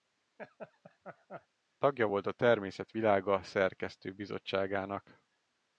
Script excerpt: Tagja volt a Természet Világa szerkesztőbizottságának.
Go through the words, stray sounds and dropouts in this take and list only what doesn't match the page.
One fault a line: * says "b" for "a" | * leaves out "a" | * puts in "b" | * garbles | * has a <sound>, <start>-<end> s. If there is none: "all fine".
* has a laugh, 0.4-1.5 s